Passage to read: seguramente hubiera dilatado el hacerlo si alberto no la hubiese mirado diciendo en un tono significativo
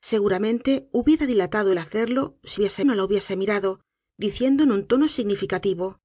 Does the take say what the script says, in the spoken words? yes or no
no